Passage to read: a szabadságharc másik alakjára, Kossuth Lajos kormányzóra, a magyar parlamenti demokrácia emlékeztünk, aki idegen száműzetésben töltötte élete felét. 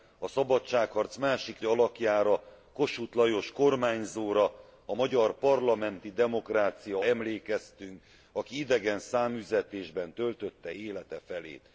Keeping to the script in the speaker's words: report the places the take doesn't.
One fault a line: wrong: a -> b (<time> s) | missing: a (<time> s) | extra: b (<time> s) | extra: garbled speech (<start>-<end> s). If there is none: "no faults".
no faults